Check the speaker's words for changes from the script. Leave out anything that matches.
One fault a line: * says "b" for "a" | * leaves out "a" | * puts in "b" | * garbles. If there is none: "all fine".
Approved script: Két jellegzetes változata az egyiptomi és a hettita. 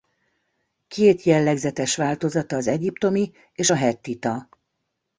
all fine